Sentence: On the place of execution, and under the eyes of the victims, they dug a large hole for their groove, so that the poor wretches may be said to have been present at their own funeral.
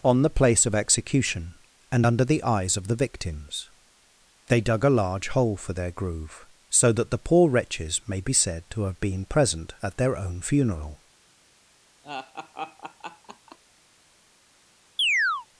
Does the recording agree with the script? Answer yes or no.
yes